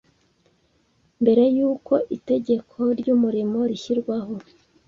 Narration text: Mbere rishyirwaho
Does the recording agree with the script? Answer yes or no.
no